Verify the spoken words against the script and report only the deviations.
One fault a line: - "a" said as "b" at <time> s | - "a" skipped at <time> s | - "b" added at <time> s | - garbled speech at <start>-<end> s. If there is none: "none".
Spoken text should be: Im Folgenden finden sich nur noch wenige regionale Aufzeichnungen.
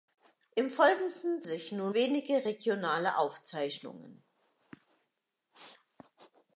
- "finden" skipped at 1.4 s
- "noch" skipped at 1.9 s